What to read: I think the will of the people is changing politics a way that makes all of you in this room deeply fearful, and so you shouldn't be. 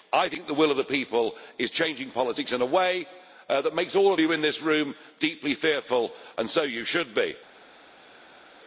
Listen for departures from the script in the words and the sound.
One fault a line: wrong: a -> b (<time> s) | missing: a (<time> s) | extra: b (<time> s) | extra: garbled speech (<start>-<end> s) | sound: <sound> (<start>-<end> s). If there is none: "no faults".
extra: in (2.5 s)
wrong: shouldn't -> should (6.8 s)